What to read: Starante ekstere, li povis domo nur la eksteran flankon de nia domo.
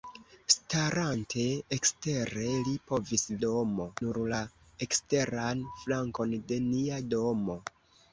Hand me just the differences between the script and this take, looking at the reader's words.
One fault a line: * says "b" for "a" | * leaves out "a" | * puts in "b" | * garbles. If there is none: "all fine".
all fine